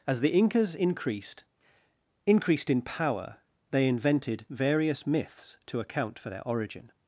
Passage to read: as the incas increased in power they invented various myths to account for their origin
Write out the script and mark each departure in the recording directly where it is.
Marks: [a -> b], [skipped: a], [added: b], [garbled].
as the incas increased [added: increased] in power they invented various myths to account for their origin